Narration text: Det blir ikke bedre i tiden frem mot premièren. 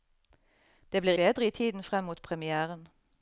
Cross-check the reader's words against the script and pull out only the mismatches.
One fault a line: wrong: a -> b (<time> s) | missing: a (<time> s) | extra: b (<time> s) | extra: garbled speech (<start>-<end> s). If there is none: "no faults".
missing: ikke (1.1 s)